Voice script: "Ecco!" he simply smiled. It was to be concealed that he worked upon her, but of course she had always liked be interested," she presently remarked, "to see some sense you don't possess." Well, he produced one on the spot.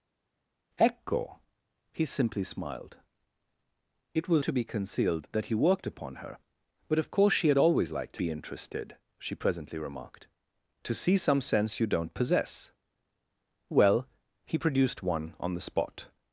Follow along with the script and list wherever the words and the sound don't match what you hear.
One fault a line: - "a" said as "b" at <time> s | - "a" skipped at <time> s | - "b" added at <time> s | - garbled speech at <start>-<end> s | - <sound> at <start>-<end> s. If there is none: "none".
none